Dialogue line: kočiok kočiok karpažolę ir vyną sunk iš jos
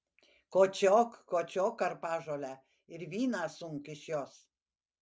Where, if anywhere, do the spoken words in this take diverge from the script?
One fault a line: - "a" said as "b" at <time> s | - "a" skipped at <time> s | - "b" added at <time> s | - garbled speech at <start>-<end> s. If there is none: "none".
none